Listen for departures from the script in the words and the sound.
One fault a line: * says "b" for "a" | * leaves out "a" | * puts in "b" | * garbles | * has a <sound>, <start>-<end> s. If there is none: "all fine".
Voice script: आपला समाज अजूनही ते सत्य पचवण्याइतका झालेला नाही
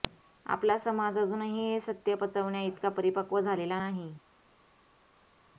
* says "हे" for "ते"
* puts in "परिपक्व"